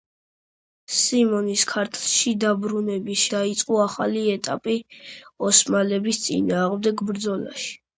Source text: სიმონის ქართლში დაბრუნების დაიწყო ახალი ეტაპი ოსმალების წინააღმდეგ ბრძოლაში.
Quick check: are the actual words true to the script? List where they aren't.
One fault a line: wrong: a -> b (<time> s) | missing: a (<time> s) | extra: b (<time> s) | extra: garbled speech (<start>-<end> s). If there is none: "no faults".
no faults